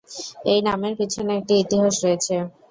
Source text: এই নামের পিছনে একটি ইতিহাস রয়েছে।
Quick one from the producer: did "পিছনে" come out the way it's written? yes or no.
yes